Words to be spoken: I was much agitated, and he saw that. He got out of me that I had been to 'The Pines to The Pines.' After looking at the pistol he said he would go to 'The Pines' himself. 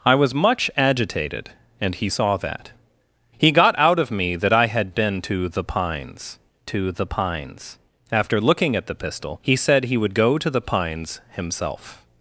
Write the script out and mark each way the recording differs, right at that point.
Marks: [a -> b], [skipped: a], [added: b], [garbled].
I was much agitated, and he saw that. He got out of me that I had been to 'The Pines to The Pines.' After looking at the pistol he said he would go to 'The Pines' himself.